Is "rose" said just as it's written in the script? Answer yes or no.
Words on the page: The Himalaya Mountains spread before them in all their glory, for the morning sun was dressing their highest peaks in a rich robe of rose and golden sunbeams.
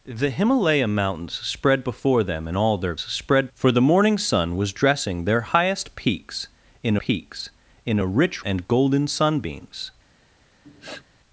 no